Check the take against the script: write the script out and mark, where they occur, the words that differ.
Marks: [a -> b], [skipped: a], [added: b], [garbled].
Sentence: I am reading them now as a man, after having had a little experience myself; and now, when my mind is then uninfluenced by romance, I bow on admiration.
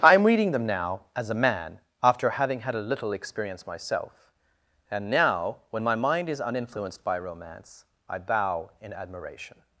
I am reading them now as a man, after having had a little experience myself; and now, when my mind is [skipped: then] uninfluenced by romance, I bow [on -> in] admiration.